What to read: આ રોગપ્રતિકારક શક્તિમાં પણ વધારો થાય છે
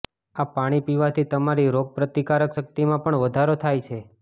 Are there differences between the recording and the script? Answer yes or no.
yes